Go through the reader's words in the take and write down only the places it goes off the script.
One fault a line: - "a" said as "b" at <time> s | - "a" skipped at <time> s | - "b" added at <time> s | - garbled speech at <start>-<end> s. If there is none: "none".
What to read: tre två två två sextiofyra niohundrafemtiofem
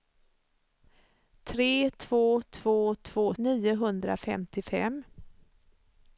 - "sextiofyra" skipped at 3.3 s